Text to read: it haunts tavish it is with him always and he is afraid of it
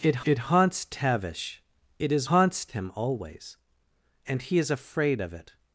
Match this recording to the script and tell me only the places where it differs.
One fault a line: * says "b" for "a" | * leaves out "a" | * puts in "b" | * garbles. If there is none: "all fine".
* puts in "it"
* says "haunts" for "with"